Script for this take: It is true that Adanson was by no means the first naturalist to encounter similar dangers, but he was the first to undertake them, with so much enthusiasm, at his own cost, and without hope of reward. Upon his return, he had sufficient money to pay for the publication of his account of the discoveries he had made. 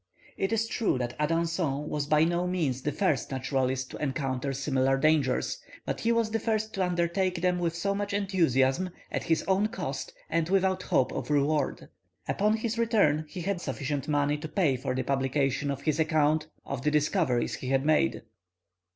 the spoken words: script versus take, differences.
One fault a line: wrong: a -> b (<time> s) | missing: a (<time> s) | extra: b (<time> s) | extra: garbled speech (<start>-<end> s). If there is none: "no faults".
no faults